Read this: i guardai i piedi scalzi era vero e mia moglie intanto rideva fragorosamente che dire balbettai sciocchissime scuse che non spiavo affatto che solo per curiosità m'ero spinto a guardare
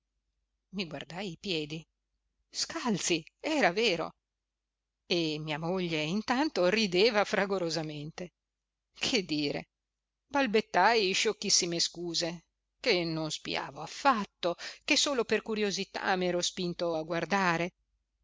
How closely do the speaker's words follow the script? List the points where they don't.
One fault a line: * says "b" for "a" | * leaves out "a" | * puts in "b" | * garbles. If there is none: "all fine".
all fine